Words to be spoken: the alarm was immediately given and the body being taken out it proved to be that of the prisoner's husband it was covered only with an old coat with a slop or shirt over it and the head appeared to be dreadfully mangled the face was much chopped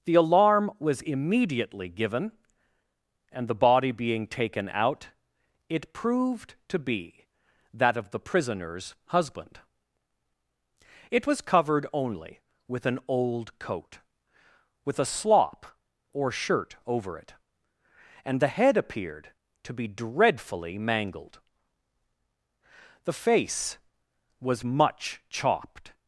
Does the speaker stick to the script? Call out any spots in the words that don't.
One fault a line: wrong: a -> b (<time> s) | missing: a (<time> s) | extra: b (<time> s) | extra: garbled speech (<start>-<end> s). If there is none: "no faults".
no faults